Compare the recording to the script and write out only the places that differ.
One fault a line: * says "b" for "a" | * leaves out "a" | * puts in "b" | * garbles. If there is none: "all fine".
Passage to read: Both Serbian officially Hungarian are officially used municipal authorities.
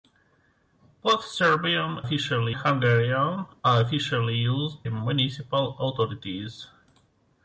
all fine